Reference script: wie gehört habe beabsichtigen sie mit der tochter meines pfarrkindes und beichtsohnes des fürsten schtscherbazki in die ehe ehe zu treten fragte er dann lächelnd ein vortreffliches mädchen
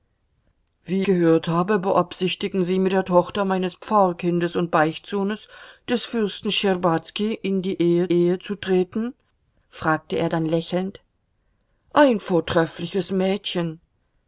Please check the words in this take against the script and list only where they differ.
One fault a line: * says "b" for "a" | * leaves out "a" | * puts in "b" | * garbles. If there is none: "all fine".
all fine